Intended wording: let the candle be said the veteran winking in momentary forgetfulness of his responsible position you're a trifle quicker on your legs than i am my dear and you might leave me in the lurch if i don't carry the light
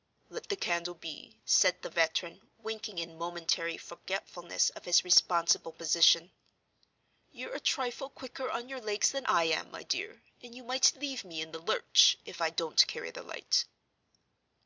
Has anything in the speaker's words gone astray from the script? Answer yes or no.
no